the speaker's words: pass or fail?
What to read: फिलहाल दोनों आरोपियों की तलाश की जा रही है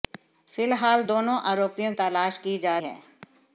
fail